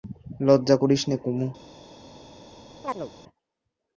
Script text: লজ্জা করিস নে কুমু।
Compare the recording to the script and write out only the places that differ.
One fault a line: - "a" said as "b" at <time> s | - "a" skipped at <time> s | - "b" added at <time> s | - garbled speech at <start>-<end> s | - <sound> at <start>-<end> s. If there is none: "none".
- chirp at 2.8-3.1 s